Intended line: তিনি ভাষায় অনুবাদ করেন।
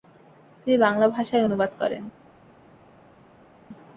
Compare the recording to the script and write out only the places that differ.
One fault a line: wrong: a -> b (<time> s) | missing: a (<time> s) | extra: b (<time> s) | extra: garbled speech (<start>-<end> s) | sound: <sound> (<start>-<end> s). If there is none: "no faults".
extra: বাংলা (0.8 s)